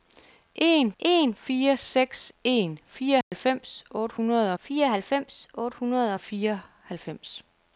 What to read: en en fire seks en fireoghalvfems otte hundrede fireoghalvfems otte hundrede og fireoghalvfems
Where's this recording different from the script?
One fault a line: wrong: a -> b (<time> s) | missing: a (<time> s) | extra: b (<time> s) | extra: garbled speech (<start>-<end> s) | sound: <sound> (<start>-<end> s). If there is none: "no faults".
sound: dropout (3.2-3.3 s)